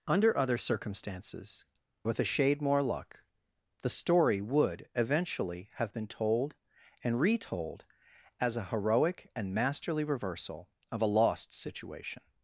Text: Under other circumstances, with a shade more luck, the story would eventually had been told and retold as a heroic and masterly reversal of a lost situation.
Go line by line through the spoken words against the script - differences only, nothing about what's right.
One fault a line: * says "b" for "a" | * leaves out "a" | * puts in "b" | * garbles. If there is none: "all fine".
* says "have" for "had"